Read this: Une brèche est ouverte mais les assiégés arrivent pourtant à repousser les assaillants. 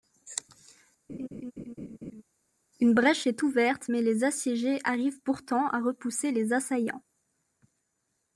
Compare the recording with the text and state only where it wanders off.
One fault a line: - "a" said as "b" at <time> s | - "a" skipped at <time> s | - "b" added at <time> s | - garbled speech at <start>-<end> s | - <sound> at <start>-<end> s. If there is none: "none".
- laugh at 1.1-2.2 s